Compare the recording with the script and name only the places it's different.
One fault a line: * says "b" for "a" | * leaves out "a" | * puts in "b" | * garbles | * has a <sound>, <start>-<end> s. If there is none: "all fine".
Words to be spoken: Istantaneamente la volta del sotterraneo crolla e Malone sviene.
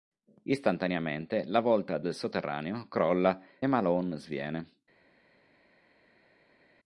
* leaves out "e"